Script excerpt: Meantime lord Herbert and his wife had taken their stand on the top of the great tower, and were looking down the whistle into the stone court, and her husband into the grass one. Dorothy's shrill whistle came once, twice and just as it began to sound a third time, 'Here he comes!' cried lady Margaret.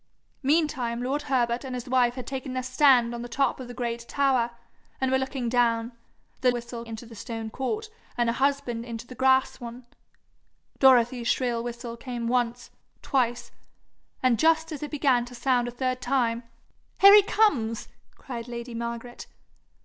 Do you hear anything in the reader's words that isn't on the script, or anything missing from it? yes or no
no